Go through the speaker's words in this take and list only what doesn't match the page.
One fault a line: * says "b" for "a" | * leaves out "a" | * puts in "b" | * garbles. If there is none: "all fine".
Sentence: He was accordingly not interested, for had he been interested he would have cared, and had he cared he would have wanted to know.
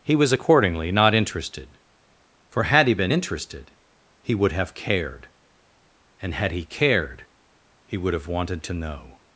all fine